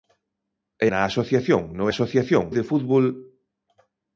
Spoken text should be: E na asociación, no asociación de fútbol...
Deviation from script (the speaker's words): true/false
false